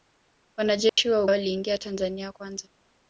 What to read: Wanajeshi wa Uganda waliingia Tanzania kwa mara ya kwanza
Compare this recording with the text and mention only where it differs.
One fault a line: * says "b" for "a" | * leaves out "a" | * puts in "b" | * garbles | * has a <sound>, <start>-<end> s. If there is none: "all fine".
* has a dropout, 0.9-1.0 s
* leaves out "Uganda"
* leaves out "kwa mara ya"